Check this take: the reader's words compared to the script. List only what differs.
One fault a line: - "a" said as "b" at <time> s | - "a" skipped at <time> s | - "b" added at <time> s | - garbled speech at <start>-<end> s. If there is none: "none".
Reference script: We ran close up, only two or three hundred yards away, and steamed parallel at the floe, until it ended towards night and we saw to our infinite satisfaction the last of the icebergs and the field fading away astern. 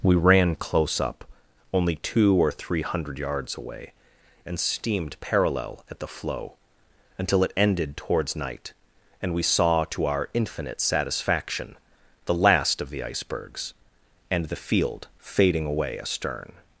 none